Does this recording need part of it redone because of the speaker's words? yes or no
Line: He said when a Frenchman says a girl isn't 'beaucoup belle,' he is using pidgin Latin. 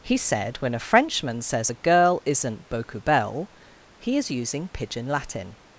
no